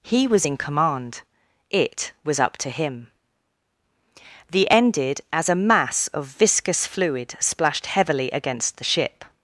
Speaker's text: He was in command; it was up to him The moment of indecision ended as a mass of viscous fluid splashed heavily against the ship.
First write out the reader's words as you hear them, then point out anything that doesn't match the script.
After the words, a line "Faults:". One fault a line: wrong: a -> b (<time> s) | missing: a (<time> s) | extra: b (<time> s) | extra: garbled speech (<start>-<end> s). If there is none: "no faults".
He was in command; it was up to him The ended as a mass of viscous fluid splashed heavily against the ship.
Faults:
missing: moment of indecision (4.7 s)